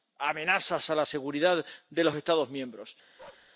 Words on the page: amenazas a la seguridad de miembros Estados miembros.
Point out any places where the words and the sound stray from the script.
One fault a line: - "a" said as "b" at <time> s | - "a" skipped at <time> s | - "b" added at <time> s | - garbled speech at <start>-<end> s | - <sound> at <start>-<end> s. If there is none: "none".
- "miembros" said as "los" at 2.0 s
- bark at 3.2-3.5 s